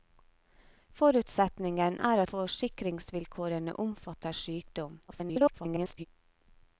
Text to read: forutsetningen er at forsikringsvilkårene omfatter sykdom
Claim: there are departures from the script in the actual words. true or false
true